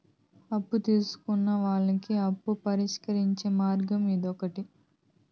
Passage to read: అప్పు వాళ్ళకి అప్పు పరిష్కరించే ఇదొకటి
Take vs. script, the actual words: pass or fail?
fail